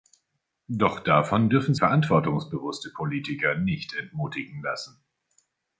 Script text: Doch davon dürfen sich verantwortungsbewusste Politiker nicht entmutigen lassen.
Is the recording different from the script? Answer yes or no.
yes